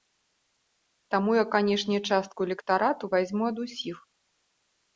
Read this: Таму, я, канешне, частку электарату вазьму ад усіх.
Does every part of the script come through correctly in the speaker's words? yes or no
yes